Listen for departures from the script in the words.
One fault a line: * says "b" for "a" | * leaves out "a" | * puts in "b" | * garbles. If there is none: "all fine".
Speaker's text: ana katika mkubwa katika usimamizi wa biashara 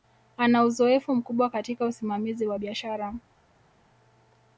* says "uzoefu" for "katika"